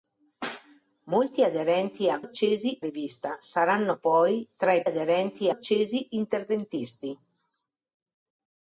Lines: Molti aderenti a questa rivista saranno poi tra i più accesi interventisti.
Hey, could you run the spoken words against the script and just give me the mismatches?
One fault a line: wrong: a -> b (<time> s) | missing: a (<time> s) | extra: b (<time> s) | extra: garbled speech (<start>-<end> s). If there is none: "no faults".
wrong: questa -> accesi (2.2 s)
wrong: più -> aderenti (4.8 s)